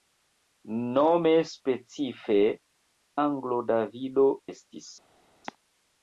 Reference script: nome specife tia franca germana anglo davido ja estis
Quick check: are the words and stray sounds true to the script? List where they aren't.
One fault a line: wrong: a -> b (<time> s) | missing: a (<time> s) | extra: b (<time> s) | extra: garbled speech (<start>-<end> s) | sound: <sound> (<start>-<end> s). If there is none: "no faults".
missing: tia franca germana (2.4 s)
missing: ja (4.3 s)